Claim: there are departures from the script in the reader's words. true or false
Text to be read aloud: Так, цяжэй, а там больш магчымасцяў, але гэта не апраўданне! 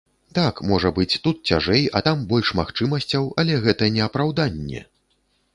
true